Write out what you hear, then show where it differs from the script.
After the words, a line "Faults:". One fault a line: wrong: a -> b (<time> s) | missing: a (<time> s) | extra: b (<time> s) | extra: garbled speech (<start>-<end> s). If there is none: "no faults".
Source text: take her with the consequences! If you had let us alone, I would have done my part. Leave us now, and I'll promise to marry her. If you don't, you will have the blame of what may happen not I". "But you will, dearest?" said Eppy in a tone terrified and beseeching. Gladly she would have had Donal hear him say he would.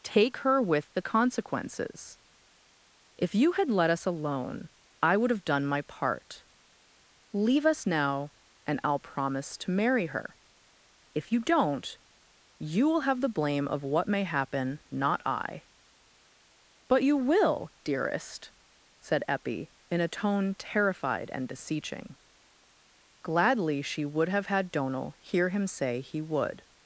take her with the consequences! If you had let us alone, I would have done my part. Leave us now, and I'll promise to marry her. If you don't, you will have the blame of what may happen not I". "But you will, dearest?" said Eppy in a tone terrified and beseeching. Gladly she would have had Donal hear him say he would.
Faults:
no faults